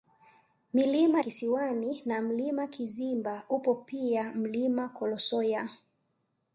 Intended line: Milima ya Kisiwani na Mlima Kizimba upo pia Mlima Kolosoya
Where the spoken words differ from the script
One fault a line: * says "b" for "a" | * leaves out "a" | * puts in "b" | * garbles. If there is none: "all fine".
* leaves out "ya"